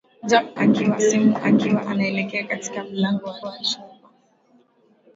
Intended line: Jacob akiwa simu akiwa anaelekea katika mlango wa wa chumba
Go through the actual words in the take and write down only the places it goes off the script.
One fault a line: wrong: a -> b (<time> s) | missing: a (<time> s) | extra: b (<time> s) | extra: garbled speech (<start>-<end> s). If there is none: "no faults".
no faults